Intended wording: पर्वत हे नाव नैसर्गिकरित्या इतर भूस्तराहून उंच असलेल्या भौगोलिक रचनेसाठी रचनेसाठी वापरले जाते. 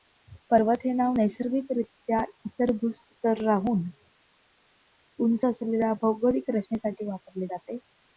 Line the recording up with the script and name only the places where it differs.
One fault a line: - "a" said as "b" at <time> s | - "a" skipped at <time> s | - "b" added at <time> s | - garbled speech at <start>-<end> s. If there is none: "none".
- "रचनेसाठी" skipped at 7.0 s